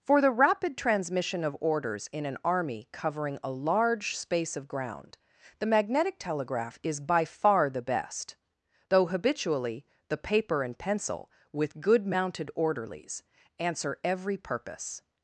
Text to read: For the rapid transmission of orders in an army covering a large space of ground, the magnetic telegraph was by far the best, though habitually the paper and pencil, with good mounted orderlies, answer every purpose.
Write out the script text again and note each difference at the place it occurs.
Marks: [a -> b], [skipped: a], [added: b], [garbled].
For the rapid transmission of orders in an army covering a large space of ground, the magnetic telegraph [was -> is] by far the best, though habitually the paper and pencil, with good mounted orderlies, answer every purpose.